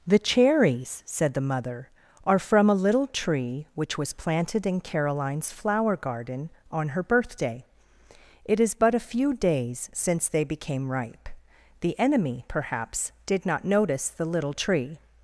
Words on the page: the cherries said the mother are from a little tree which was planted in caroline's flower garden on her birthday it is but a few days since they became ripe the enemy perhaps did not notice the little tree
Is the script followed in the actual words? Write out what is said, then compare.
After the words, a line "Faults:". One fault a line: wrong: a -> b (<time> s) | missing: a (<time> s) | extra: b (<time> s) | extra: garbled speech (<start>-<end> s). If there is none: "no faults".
the cherries said the mother are from a little tree which was planted in caroline's flower garden on her birthday it is but a few days since they became ripe the enemy perhaps did not notice the little tree
Faults:
no faults